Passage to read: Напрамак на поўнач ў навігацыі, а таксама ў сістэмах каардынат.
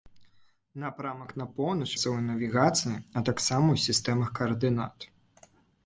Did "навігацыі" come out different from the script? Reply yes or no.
no